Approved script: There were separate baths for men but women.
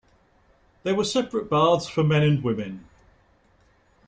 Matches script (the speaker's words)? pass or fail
fail